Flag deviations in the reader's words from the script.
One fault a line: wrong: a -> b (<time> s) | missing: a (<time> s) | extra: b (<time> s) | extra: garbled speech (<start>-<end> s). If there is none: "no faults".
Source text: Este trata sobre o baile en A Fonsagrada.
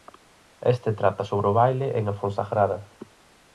no faults